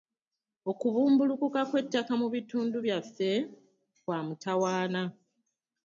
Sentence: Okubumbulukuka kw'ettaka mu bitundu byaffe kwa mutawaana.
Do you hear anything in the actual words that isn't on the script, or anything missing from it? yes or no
no